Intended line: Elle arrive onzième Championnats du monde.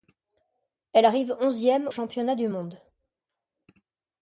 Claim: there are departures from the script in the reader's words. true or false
false